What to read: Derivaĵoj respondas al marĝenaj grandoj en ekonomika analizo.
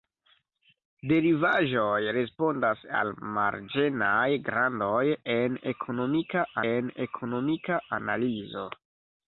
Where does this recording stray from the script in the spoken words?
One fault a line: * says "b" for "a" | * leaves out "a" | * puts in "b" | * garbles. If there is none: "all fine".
* puts in "en ekonomika"